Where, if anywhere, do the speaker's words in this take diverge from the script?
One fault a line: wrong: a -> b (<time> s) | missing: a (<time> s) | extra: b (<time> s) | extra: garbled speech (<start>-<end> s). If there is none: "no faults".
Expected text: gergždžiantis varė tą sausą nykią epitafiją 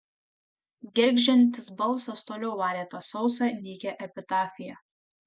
extra: balsas toliau (1.8 s)